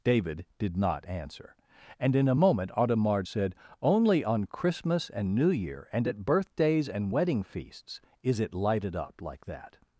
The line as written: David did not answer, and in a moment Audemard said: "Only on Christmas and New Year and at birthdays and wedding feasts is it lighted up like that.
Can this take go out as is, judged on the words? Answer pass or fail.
pass